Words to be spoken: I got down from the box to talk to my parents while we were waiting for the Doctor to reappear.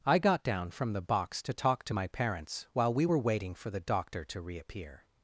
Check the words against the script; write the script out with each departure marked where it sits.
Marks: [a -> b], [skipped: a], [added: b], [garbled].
I got down from the box to talk to my parents while we were waiting for the Doctor to reappear.